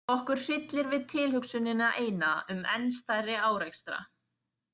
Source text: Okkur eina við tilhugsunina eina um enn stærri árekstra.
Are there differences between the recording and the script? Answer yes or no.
yes